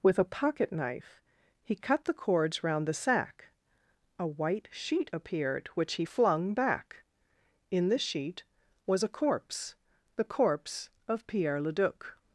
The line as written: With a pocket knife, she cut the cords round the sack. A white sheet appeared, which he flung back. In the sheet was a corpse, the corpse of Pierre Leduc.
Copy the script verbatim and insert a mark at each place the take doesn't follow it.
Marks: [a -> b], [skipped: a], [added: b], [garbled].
With a pocket knife, [she -> he] cut the cords round the sack. A white sheet appeared, which he flung back. In the sheet was a corpse, the corpse of Pierre Leduc.